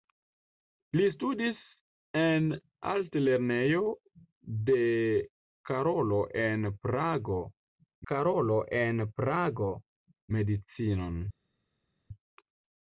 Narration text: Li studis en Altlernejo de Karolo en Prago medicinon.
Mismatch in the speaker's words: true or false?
true